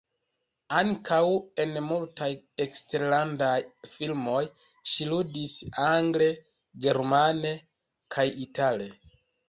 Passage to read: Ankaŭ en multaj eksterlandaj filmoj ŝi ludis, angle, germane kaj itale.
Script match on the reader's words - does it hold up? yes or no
yes